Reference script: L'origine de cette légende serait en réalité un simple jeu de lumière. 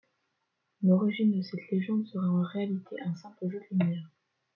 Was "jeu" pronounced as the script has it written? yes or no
yes